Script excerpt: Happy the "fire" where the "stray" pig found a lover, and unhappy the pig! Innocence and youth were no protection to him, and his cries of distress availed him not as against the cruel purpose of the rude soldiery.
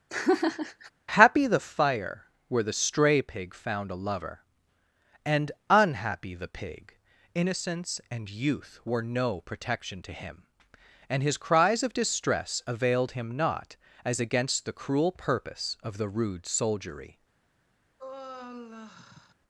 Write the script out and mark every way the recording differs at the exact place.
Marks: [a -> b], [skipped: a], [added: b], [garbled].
Happy the "fire" where the "stray" pig found a lover, and unhappy the pig! Innocence and youth were no protection to him, and his cries of distress availed him not as against the cruel purpose of the rude soldiery.